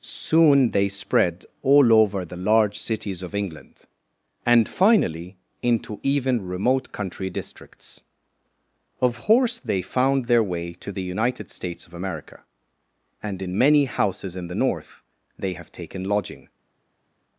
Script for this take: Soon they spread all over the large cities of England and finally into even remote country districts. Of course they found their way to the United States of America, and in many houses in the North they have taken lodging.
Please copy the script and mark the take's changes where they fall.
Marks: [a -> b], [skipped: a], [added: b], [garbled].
Soon they spread all over the large cities of England and finally into even remote country districts. Of [course -> horse] they found their way to the United States of America, and in many houses in the North they have taken lodging.